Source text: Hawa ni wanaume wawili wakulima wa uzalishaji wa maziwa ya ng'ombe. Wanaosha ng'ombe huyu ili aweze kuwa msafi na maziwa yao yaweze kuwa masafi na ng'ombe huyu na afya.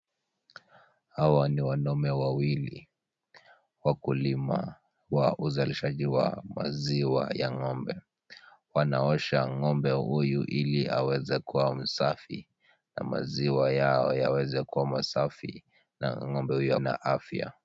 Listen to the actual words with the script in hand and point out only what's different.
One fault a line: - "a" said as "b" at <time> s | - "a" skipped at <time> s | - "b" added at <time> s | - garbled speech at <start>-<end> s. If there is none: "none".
none